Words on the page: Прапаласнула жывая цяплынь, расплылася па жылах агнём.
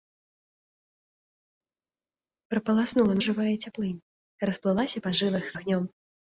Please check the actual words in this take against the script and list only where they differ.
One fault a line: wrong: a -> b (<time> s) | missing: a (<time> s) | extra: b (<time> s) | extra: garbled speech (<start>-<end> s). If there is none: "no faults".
no faults